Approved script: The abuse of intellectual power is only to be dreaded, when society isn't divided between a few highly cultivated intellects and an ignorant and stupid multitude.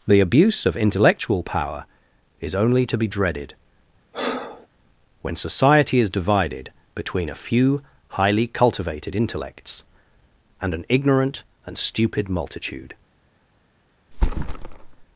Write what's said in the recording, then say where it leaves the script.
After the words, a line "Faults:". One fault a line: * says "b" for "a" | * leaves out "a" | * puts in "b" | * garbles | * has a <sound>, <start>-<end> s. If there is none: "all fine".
The abuse of intellectual power is only to be dreaded, when society is divided between a few highly cultivated intellects and an ignorant and stupid multitude.
Faults:
* has a breath, 4.1-4.7 s
* says "is" for "isn't"
* has a thud, 14.1-15.1 s